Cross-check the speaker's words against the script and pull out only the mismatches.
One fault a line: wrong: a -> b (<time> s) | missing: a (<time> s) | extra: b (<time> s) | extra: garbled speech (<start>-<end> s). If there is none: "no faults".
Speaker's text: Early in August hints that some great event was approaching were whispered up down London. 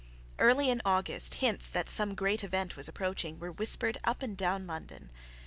extra: and (4.2 s)